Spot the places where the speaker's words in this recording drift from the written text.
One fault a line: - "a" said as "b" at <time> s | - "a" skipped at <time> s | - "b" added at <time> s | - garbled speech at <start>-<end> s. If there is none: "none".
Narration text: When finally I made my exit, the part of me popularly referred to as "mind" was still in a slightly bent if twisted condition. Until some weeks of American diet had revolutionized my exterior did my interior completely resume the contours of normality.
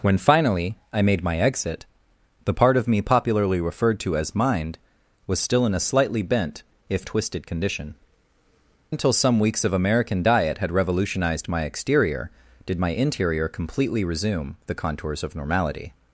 none